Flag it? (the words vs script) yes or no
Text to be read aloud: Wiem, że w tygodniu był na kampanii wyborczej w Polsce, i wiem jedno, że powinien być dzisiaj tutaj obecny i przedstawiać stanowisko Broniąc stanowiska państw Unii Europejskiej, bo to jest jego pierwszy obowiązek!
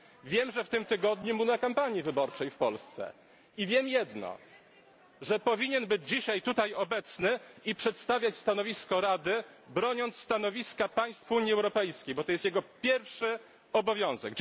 yes